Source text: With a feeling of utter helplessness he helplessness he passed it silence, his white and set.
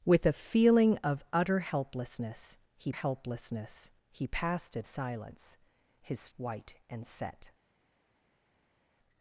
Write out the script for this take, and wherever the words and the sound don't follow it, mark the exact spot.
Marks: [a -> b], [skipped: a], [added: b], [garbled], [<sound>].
With a feeling of utter helplessness he helplessness he passed it silence, his white and set.